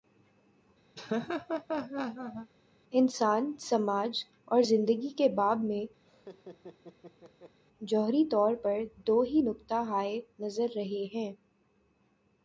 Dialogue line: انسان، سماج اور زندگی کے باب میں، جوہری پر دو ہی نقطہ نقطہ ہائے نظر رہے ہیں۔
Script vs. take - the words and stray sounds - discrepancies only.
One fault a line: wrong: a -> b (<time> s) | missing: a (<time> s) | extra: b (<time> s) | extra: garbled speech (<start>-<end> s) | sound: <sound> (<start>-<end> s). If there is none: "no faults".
sound: laugh (0.9-2.5 s)
sound: laugh (6.0-7.6 s)
extra: طور (8.2 s)
missing: نقطہ (9.7 s)